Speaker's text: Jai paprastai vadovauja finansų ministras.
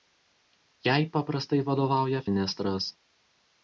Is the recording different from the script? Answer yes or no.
yes